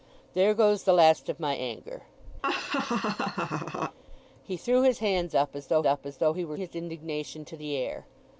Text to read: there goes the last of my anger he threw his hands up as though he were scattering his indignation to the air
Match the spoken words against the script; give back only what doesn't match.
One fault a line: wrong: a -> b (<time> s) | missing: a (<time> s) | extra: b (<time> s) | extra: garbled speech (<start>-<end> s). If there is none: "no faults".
extra: up as though (5.9 s)
missing: scattering (6.6 s)